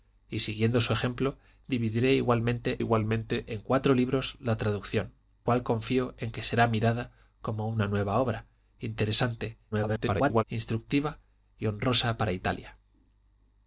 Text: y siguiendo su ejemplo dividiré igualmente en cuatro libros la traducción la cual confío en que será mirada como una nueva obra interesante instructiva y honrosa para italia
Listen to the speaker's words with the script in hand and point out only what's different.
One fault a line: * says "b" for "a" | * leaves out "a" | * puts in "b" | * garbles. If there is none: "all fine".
* puts in "igualmente"
* leaves out "la"
* garbles